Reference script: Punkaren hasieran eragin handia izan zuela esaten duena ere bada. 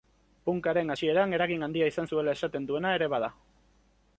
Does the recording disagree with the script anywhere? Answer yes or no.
no